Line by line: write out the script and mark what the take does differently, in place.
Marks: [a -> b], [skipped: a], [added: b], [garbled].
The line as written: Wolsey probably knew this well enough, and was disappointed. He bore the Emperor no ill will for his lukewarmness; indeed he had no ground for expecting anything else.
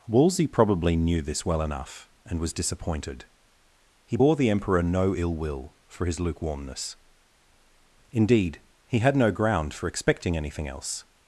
Wolsey probably knew this well enough, and was disappointed. He bore the Emperor no ill will for his lukewarmness; indeed he had no ground for expecting anything else.